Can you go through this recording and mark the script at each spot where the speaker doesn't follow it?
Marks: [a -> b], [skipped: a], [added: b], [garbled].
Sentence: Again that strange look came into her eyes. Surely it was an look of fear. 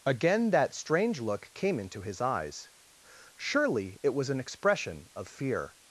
Again that strange look came into [her -> his] eyes. Surely it was an [look -> expression] of fear.